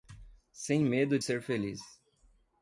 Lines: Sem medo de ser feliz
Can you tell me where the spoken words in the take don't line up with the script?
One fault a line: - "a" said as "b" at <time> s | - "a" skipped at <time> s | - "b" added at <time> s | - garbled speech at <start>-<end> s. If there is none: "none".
none